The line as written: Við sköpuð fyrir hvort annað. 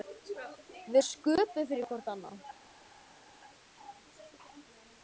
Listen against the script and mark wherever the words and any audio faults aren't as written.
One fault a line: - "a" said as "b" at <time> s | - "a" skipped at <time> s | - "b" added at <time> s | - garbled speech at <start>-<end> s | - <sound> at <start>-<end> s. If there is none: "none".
none